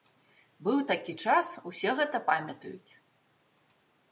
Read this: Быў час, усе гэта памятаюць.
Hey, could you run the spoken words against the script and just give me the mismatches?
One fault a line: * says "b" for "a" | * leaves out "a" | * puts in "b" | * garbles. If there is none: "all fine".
* puts in "такі"